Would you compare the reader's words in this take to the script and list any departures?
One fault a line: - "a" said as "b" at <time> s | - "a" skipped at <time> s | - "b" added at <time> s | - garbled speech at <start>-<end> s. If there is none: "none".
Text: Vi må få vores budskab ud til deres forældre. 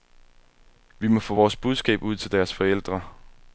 none